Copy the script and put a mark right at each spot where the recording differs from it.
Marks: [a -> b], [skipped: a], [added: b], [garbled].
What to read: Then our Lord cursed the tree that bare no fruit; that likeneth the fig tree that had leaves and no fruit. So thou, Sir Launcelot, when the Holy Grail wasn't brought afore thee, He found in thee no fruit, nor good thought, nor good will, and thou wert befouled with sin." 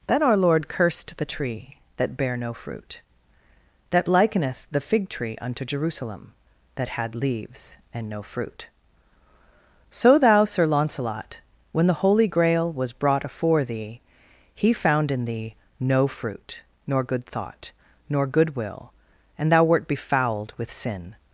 Then our Lord cursed the tree that bare no fruit; that likeneth the fig tree [added: unto Jerusalem] that had leaves and no fruit. So thou, Sir Launcelot, when the Holy Grail [wasn't -> was] brought afore thee, He found in thee no fruit, nor good thought, nor good will, and thou wert befouled with sin."